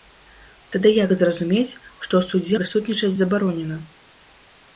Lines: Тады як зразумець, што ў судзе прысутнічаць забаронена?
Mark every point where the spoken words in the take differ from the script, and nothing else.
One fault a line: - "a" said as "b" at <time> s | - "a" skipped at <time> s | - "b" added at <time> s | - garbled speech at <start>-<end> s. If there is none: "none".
none